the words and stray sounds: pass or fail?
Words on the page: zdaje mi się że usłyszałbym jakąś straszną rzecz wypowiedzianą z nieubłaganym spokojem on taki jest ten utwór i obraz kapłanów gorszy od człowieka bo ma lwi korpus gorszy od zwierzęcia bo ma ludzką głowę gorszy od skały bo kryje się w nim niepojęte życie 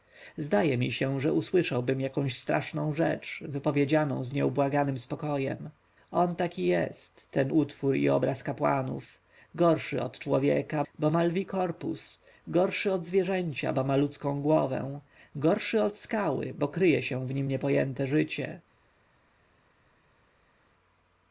pass